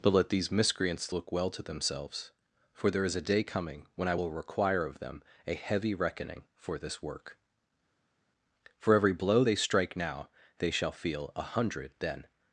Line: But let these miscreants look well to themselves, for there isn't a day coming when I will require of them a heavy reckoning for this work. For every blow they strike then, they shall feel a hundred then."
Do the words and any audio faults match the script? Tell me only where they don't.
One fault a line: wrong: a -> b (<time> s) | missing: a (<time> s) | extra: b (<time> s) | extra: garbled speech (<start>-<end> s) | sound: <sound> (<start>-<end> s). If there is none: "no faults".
wrong: isn't -> is (3.0 s)
wrong: then -> now (10.0 s)